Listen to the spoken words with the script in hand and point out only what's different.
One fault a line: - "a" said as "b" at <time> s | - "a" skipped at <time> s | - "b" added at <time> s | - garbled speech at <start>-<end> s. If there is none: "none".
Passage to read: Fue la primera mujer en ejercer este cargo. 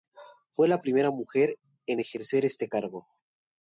none